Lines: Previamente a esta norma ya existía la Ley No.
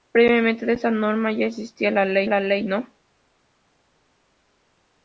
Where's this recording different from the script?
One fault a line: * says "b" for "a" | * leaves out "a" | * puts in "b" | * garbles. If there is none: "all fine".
* puts in "la Ley"